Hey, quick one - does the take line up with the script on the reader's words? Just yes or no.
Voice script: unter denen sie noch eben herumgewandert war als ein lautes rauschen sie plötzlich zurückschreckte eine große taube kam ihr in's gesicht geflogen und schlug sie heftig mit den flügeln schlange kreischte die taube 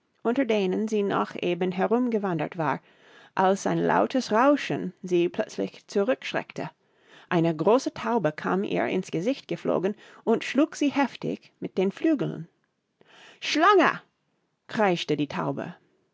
yes